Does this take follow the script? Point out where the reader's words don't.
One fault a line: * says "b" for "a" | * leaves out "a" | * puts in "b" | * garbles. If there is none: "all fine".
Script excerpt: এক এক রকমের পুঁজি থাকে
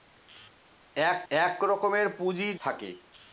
all fine